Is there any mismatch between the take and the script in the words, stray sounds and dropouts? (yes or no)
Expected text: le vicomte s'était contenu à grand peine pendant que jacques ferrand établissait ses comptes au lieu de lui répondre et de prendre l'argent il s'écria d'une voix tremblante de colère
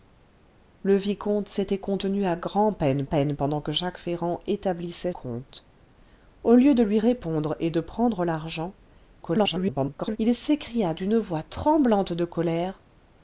yes